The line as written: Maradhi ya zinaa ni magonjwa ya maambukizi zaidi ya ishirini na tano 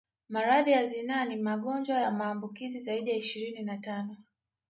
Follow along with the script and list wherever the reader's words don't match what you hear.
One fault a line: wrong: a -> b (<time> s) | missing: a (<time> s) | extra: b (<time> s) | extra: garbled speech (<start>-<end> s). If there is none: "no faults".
no faults